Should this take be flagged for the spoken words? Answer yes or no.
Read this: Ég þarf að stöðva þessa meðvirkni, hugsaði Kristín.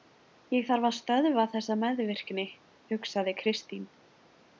no